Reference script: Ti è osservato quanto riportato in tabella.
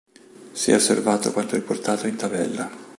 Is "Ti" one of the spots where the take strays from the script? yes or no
yes